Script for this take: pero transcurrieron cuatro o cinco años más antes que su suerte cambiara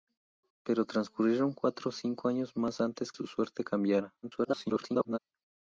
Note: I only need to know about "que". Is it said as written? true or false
false